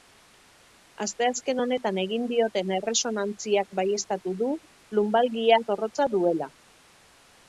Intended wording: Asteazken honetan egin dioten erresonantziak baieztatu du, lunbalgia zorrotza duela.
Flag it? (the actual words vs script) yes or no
no